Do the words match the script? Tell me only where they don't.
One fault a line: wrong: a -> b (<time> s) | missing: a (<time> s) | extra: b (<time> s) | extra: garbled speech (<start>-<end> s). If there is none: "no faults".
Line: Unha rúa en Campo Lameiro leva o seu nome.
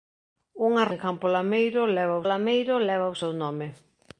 missing: rúa (0.8 s)
extra: Lameiro leva (2.3 s)